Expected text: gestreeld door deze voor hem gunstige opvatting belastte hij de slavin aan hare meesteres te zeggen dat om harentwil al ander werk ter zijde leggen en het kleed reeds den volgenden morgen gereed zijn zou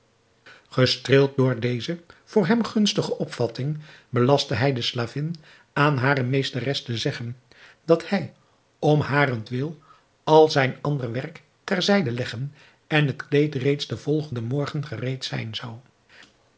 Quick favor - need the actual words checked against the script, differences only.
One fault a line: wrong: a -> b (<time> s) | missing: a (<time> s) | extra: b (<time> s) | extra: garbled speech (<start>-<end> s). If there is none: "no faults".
extra: hij (8.1 s)
extra: zijn (10.5 s)